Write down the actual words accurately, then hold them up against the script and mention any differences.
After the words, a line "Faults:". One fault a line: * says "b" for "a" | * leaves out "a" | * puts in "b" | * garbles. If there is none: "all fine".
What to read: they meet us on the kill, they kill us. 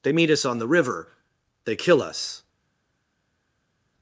they meet us on the river, they kill us.
Faults:
* says "river" for "kill"